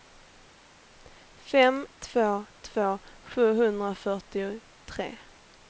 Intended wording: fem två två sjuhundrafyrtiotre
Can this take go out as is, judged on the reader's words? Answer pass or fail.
pass